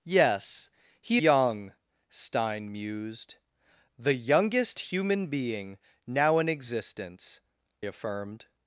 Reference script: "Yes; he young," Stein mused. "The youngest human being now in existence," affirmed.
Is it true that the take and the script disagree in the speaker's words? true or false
false